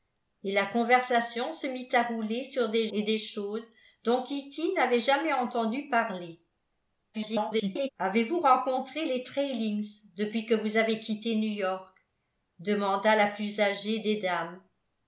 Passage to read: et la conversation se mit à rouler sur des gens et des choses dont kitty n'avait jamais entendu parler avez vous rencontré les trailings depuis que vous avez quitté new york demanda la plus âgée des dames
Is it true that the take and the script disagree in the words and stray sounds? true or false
true